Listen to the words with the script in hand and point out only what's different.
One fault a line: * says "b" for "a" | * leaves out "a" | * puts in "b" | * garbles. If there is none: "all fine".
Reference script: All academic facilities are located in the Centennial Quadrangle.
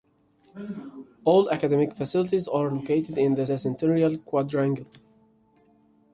* puts in "the"